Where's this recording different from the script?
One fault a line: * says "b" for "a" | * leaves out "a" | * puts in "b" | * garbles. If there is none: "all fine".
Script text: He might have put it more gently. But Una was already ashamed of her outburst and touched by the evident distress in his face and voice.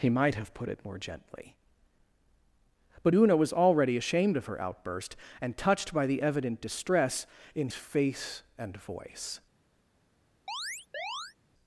* leaves out "his"